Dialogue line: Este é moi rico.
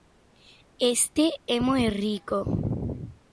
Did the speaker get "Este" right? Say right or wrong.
right